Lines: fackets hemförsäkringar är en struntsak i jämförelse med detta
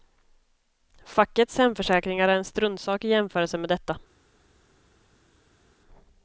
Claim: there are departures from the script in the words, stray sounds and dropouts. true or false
false